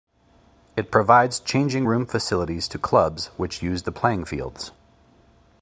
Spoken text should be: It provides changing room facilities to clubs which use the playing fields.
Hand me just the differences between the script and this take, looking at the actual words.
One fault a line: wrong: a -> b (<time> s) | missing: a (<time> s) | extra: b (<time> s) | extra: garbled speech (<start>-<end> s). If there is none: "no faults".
no faults